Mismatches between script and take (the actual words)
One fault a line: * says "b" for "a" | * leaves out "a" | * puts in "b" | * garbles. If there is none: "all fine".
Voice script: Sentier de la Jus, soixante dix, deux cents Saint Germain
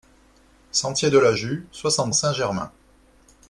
* leaves out "dix deux cents"